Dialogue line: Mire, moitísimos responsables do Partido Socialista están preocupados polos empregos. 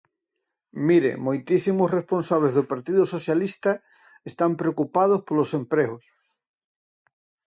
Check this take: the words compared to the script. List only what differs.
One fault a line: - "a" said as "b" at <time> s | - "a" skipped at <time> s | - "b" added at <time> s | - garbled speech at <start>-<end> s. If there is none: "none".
none